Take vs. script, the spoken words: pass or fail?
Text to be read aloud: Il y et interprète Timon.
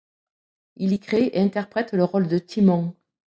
fail